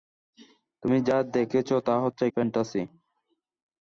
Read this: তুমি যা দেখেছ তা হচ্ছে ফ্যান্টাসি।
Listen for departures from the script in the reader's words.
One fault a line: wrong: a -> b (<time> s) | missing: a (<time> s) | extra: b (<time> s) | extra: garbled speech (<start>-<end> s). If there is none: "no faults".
no faults